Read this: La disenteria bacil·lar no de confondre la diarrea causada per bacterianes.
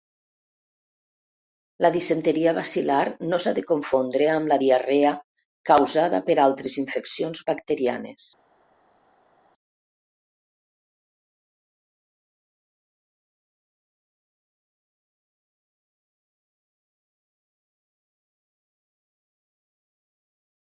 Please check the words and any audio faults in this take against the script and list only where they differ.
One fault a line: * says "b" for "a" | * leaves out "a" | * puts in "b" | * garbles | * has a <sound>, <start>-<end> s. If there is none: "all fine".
* puts in "s'ha"
* puts in "amb"
* puts in "altres infeccions"